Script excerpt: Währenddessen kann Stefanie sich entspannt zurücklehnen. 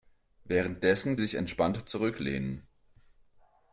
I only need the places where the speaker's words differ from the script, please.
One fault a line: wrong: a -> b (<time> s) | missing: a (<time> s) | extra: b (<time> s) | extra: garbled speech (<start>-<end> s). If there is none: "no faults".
missing: kann Stefanie (1.2 s)